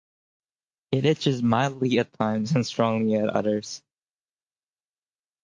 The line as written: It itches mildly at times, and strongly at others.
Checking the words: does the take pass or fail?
pass